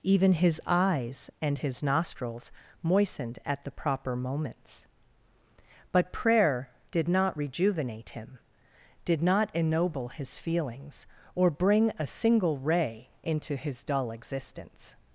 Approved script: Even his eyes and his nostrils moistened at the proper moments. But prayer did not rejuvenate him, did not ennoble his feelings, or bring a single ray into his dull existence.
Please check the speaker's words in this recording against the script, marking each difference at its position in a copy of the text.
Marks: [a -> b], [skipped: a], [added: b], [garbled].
Even his eyes and his nostrils moistened at the proper moments. But prayer did not rejuvenate him, did not ennoble his feelings, or bring a single ray into his dull existence.